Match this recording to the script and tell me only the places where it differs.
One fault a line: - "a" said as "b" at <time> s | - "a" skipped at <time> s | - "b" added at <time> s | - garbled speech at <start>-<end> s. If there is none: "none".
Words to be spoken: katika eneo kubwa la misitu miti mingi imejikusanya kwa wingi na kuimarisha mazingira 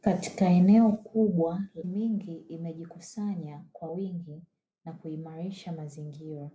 - "la misitu miti" skipped at 1.6 s